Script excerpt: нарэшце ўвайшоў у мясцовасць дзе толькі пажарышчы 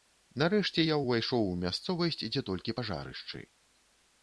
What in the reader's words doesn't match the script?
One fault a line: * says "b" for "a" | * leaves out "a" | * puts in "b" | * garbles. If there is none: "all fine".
* puts in "я"